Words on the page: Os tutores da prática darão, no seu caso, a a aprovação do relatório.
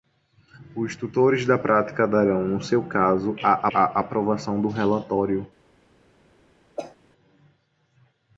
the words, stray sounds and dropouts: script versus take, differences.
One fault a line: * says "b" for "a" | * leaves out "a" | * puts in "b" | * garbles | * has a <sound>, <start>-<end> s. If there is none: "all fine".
* has a cough, 6.8-7.0 s